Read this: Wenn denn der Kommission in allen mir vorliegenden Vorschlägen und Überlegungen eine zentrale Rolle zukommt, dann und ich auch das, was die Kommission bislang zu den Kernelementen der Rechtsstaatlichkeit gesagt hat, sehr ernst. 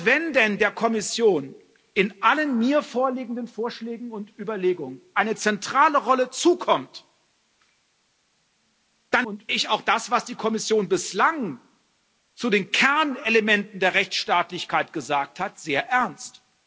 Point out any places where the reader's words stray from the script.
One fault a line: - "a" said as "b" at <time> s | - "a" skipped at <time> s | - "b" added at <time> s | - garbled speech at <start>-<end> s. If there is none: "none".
none